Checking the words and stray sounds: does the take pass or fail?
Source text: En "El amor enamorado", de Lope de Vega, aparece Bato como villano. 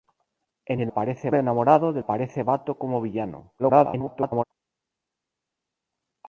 fail